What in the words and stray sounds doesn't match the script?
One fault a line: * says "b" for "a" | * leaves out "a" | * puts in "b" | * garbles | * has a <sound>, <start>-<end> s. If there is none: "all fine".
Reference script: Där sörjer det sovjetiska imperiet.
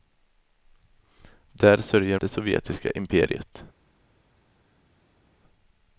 all fine